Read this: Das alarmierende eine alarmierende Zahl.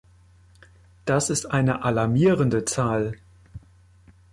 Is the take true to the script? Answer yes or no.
no